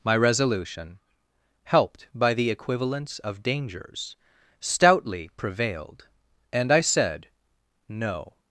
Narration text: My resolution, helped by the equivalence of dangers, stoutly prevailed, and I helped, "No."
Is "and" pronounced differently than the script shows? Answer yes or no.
no